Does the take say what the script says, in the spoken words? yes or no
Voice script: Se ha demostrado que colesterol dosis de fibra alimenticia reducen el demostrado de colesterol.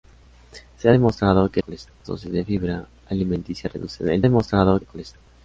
yes